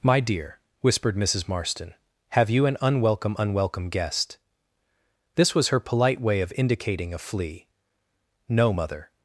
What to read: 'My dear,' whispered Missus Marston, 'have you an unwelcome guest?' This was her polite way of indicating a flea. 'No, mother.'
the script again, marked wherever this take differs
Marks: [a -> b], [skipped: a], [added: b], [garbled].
'My dear,' whispered Missus Marston, 'have you an unwelcome [added: unwelcome] guest?' This was her polite way of indicating a flea. 'No, mother.'